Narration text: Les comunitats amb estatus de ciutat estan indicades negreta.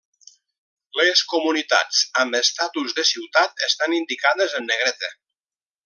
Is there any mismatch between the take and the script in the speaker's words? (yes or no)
yes